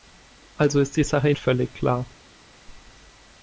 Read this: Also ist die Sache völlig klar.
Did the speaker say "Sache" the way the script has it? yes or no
yes